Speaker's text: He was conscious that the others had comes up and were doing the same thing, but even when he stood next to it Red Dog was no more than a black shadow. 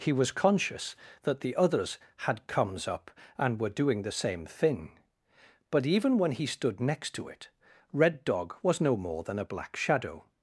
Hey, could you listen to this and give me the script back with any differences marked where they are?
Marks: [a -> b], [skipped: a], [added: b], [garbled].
He was conscious that the others had comes up and were doing the same thing, but even when he stood next to it Red Dog was no more than a black shadow.